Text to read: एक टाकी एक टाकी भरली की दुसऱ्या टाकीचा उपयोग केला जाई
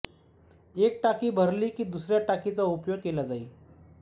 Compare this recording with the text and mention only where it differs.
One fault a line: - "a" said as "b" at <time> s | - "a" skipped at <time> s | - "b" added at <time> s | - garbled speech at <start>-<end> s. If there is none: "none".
- "एक टाकी" skipped at 1.3 s